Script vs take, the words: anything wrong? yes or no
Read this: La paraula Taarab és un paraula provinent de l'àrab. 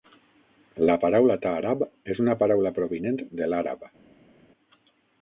yes